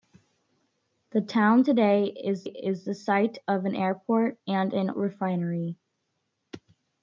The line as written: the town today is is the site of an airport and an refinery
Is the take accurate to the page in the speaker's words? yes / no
yes